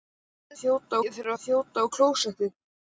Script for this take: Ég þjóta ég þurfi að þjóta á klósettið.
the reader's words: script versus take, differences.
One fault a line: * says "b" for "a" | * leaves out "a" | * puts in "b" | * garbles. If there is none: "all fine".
all fine